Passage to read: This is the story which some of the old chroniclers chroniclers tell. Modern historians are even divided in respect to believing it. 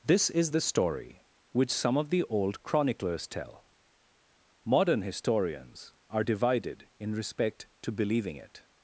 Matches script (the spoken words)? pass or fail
fail